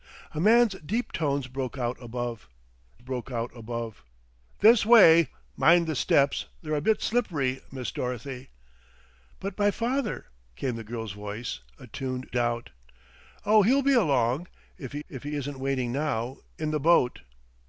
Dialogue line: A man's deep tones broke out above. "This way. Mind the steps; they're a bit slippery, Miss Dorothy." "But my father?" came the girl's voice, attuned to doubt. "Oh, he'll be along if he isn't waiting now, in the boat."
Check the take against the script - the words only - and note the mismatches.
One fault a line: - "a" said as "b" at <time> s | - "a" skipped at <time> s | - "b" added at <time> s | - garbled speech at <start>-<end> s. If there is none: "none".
- "broke out above" added at 3.0 s
- "to" skipped at 12.3 s
- "if he" added at 15.1 s